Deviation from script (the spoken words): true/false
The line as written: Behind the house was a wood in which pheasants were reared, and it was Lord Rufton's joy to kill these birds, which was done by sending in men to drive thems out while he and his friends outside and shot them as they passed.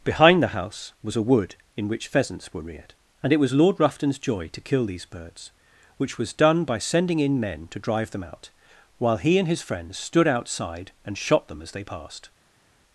true